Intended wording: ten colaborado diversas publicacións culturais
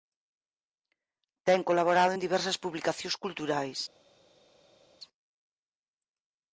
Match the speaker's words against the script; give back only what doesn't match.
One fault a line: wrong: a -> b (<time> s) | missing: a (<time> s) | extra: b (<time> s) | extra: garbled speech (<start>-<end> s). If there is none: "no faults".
extra: en (2.1 s)